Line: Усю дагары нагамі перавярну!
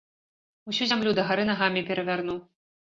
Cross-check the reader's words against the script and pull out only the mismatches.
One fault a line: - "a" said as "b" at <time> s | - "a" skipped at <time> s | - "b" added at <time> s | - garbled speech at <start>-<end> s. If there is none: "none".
- "зямлю" added at 0.9 s